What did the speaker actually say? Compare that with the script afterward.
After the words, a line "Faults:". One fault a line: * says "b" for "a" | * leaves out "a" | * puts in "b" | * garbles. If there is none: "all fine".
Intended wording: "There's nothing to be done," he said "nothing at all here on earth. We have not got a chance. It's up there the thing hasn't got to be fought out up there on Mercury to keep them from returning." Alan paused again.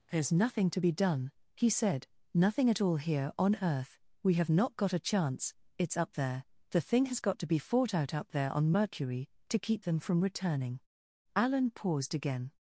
"There's nothing to be done," he said "nothing at all here on earth. We have not got a chance. It's up there the thing has got to be fought out up there on Mercury to keep them from returning." Alan paused again.
Faults:
* says "has" for "hasn't"